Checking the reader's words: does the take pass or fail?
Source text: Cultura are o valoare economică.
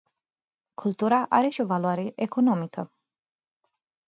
fail